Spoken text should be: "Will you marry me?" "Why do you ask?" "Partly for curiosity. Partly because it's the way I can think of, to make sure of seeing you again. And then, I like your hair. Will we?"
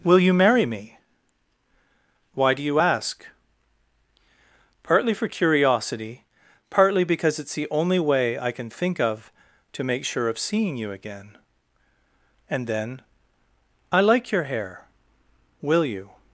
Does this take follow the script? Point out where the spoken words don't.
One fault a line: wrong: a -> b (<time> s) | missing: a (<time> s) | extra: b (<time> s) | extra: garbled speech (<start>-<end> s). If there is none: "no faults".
extra: only (7.7 s)
wrong: we -> you (15.8 s)